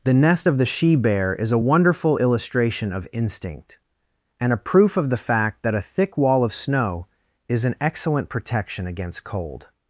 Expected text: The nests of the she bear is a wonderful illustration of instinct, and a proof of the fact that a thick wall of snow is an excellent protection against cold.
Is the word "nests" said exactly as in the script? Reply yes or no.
no